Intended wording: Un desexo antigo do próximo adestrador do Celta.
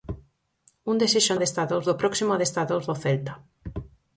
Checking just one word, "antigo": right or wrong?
wrong